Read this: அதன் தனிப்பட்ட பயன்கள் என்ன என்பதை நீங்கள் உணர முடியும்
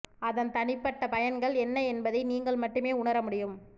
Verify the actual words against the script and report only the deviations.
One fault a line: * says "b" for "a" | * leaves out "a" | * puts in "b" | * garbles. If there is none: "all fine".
* puts in "மட்டுமே"